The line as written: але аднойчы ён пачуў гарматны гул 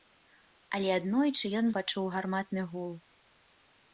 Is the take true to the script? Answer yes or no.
yes